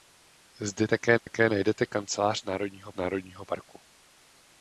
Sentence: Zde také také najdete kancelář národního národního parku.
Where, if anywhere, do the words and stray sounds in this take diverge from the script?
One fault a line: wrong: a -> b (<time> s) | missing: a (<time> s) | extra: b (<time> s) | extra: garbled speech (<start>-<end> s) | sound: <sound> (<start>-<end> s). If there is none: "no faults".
sound: dropout (1.2-1.3 s)